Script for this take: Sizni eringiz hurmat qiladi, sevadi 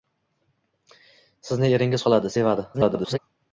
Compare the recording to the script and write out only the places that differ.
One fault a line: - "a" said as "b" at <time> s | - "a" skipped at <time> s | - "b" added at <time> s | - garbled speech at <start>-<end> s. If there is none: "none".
- "hurmat" skipped at 2.1 s
- garbled speech at 2.7-3.2 s